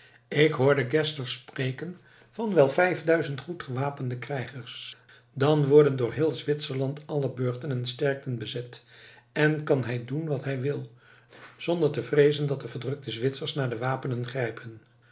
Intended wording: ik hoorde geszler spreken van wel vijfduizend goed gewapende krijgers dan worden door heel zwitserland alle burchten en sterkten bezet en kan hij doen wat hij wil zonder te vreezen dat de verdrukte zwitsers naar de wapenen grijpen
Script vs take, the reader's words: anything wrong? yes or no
no